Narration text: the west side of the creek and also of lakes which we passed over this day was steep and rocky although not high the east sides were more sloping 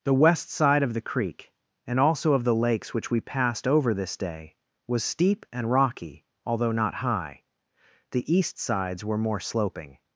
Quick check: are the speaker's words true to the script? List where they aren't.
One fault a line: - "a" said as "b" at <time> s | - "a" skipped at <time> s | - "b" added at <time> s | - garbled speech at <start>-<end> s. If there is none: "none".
- "the" added at 2.4 s